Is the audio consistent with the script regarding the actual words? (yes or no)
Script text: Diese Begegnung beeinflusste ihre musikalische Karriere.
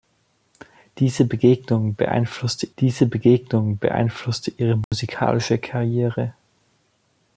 no